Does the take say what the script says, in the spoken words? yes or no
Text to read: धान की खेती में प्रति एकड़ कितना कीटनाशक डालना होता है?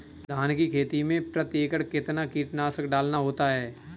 yes